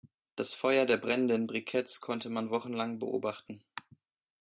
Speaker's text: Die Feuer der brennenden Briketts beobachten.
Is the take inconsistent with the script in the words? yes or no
yes